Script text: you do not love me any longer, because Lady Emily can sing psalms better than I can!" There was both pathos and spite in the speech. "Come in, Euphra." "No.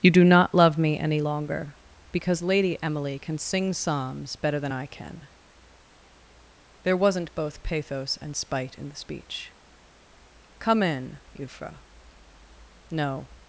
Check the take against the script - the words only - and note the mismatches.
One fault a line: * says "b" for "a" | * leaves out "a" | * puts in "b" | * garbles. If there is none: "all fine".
* says "wasn't" for "was"